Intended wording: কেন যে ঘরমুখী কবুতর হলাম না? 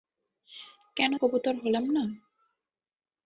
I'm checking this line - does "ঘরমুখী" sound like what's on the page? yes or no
no